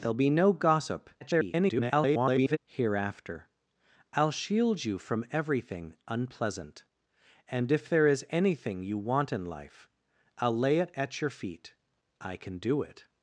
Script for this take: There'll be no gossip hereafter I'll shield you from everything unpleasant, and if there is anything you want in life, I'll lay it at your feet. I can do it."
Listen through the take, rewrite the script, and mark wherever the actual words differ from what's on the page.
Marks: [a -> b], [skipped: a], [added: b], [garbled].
There'll be no gossip [garbled] hereafter I'll shield you from everything unpleasant, and if there is anything you want in life, I'll lay it at your feet. I can do it."